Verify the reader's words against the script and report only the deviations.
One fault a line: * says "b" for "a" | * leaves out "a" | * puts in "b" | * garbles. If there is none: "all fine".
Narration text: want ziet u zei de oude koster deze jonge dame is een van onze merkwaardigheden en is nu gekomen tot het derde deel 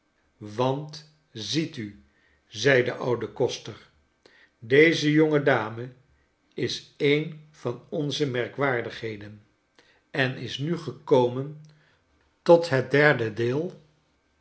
all fine